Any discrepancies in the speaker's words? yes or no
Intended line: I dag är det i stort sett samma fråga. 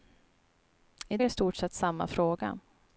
yes